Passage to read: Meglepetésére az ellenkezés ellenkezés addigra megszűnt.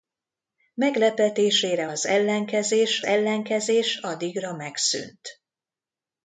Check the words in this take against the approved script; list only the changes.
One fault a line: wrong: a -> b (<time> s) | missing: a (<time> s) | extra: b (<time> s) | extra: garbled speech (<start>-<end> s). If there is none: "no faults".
no faults